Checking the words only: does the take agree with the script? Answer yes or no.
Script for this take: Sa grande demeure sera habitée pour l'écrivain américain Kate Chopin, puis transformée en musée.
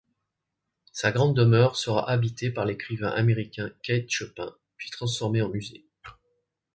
no